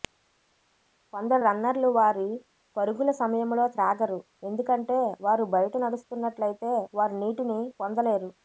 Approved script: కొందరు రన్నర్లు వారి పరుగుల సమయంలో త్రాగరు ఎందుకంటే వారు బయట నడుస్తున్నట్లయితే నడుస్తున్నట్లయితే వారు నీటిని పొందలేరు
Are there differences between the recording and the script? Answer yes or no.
yes